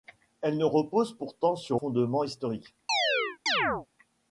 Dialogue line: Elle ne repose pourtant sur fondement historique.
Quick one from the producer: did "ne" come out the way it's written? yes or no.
yes